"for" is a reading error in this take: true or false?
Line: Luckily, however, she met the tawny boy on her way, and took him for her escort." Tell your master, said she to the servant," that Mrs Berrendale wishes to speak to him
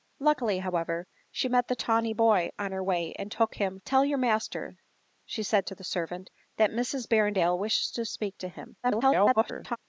true